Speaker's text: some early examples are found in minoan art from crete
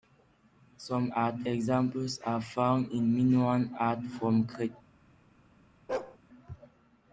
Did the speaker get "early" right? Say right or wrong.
wrong